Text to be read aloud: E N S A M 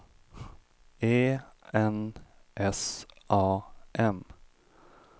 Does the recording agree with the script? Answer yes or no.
yes